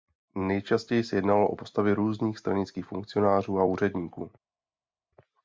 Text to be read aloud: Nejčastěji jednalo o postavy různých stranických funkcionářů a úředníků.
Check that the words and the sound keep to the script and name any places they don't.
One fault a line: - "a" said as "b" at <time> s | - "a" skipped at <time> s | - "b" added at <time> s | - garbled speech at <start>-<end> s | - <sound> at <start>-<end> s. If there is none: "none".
- "se" added at 1.0 s